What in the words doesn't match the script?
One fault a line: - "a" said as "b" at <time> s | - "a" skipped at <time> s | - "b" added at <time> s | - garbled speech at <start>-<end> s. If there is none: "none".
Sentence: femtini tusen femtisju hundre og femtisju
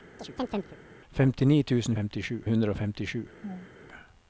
none